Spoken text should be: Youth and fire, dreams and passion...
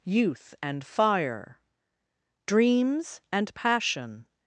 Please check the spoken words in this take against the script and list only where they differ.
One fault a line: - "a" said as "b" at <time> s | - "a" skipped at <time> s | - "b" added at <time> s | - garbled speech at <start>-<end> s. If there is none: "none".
none